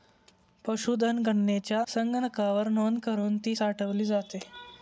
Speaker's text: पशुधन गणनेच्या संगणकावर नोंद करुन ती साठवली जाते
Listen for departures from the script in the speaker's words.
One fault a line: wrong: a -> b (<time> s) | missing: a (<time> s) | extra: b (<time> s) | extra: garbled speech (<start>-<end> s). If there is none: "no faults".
no faults